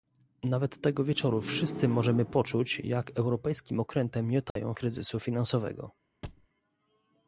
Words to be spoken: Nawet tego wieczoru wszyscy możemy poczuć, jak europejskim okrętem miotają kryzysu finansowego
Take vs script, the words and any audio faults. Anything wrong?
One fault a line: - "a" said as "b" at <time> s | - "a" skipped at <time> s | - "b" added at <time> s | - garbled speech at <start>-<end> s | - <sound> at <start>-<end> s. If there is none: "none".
- dropout at 4.5-4.6 s
- thud at 6.2-6.5 s